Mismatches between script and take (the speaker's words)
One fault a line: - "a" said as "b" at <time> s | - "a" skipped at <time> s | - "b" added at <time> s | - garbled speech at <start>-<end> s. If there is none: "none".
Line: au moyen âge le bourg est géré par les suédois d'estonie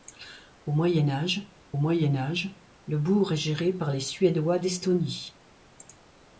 - "moyen âge" added at 1.8 s